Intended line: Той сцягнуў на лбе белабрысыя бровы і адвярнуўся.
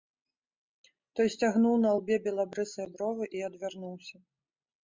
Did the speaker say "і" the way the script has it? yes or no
yes